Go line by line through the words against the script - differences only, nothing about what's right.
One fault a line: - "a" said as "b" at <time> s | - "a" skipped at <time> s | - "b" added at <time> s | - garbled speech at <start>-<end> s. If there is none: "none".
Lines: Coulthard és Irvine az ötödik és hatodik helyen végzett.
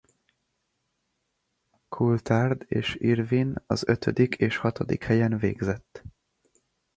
none